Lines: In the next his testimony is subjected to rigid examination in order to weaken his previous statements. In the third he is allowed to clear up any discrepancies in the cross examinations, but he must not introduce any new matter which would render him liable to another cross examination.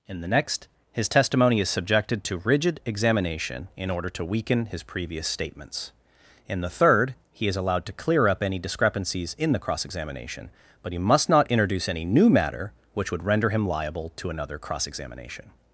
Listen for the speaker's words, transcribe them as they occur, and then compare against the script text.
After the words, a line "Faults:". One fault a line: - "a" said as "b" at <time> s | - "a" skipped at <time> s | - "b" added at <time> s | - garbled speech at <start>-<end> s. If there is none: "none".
In the next his testimony is subjected to rigid examination in order to weaken his previous statements. In the third he is allowed to clear up any discrepancies in the cross examination, but he must not introduce any new matter which would render him liable to another cross examination.
Faults:
- "examinations" said as "examination" at 9.8 s